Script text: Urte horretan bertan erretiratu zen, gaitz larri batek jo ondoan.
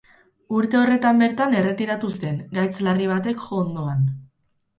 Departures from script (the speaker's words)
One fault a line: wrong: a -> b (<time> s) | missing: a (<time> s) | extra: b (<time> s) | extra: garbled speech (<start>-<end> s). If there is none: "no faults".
no faults